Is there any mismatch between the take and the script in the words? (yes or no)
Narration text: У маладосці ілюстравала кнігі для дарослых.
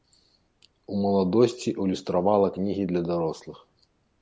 no